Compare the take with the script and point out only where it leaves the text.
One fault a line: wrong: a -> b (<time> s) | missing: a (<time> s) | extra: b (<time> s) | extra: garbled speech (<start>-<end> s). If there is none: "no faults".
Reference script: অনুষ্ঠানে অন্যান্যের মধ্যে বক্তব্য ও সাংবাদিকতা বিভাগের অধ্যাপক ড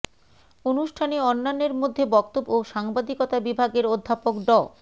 no faults